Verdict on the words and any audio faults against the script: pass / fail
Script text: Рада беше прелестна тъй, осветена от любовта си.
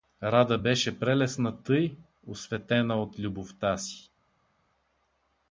pass